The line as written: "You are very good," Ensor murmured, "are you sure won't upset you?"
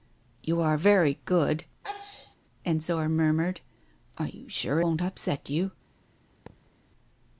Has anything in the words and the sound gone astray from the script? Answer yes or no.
yes